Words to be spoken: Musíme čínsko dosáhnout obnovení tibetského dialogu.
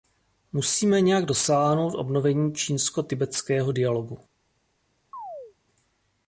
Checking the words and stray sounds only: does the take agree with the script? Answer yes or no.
no